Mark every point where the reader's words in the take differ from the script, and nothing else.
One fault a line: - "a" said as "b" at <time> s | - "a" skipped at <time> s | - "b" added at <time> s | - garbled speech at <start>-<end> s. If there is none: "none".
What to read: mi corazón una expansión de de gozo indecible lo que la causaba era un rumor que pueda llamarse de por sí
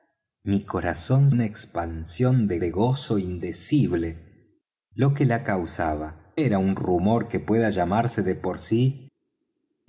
none